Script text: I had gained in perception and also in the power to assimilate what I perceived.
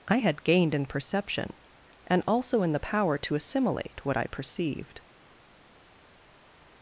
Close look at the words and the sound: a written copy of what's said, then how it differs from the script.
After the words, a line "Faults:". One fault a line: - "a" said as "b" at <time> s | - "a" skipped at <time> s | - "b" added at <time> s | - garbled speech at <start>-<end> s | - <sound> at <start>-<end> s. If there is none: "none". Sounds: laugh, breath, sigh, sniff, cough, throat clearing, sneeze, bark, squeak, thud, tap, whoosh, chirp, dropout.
I had gained in perception and also in the power to assimilate what I perceived.
Faults:
none